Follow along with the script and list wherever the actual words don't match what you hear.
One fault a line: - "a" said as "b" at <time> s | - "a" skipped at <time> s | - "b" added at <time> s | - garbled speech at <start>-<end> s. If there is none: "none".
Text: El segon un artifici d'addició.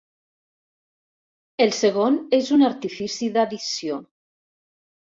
- "és" added at 2.4 s